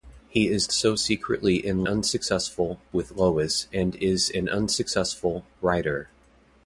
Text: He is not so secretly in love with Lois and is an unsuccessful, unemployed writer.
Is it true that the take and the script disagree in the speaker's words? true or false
true